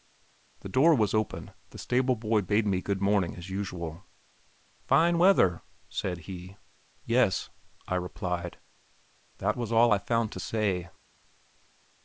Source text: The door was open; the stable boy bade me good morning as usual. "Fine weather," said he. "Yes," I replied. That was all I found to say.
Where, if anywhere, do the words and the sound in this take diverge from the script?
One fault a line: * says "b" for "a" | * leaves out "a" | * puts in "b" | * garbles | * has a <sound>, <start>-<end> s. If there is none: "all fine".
all fine